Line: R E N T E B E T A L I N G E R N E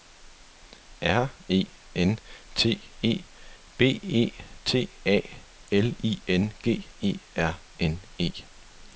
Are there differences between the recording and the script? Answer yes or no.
no